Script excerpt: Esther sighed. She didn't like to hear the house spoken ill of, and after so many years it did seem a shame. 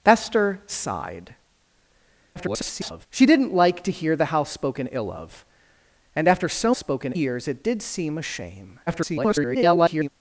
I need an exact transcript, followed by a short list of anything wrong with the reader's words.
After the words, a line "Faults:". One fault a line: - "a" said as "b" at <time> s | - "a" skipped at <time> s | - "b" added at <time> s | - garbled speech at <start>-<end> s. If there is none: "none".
Esther sighed. [garbled] She didn't like to hear the house spoken ill of, and after so spoken years it did seem a shame. [garbled]
Faults:
- garbled speech at 2.4-3.1 s
- "many" said as "spoken" at 6.8 s
- garbled speech at 8.9-10.1 s